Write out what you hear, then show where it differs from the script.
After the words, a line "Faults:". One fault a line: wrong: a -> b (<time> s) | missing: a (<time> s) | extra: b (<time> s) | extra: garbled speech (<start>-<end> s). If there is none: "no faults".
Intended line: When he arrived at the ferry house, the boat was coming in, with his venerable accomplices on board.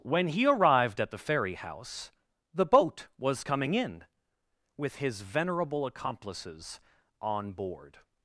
When he arrived at the ferry house, the boat was coming in, with his venerable accomplices on board.
Faults:
no faults